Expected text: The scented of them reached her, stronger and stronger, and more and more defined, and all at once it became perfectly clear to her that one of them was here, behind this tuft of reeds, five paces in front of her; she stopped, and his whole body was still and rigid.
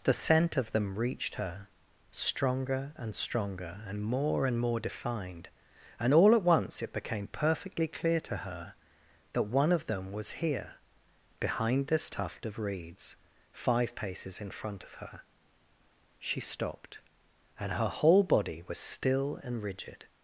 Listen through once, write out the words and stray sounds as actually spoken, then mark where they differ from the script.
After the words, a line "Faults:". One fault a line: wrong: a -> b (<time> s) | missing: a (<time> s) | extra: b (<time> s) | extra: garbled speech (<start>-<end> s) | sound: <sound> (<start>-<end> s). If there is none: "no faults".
The scent of them reached her, stronger and stronger, and more and more defined, and all at once it became perfectly clear to her that one of them was here, behind this tuft of reeds, five paces in front of her; she stopped, and her whole body was still and rigid.
Faults:
wrong: scented -> scent (0.1 s)
wrong: his -> her (17.7 s)